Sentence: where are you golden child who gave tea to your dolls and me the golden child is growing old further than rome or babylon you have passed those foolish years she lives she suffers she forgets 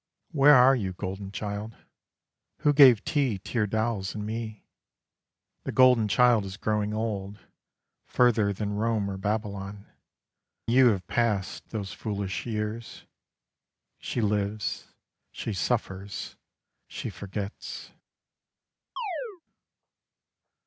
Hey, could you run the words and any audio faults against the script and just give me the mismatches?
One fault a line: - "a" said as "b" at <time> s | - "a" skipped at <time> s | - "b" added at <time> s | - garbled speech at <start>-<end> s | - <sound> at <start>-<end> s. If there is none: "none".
- chirp at 19.0-19.4 s